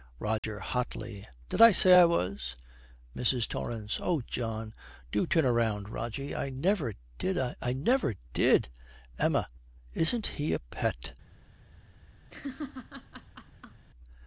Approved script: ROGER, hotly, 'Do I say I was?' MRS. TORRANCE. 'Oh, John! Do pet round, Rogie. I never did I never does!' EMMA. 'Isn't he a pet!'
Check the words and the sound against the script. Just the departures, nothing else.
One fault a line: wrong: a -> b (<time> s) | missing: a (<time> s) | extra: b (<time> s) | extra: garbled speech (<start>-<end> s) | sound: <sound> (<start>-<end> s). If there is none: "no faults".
sound: dropout (0.4-0.4 s)
wrong: Do -> Did (1.5 s)
wrong: pet -> turn (5.3 s)
wrong: does -> did (8.3 s)
sound: laugh (12.3-13.9 s)